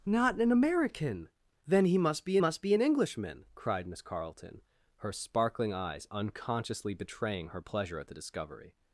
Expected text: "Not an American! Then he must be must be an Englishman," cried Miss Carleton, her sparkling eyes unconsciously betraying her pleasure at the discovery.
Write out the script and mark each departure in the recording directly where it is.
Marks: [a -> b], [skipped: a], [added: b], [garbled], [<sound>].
"Not an American! Then he must be must be an Englishman," cried Miss Carleton, her sparkling eyes unconsciously betraying her pleasure at the discovery.